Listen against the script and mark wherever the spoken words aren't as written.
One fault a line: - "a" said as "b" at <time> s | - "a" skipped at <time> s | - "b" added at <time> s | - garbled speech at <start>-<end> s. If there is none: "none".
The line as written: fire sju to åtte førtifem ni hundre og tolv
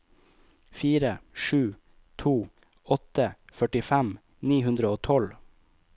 none